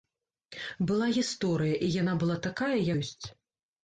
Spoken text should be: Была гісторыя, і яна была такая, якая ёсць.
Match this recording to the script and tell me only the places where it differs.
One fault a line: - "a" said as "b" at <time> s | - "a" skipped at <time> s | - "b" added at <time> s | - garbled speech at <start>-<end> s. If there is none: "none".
- "якая" skipped at 2.7 s